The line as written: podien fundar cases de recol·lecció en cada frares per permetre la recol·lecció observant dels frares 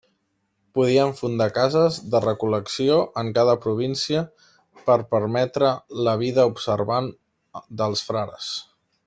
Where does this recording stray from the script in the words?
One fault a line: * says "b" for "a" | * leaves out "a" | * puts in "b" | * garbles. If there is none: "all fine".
* says "província" for "frares"
* says "vida" for "recol·lecció"